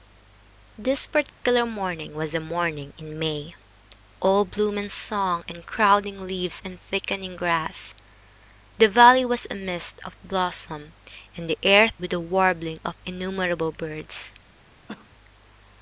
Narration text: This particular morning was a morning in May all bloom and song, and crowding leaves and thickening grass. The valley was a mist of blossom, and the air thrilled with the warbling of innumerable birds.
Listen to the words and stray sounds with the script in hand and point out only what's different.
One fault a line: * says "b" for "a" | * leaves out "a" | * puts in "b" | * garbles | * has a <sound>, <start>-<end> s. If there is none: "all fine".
* has a dropout, 1.3-1.4 s
* leaves out "thrilled"
* has a cough, 14.9-15.1 s